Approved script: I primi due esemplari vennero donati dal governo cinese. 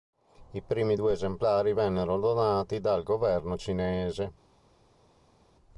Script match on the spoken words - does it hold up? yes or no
yes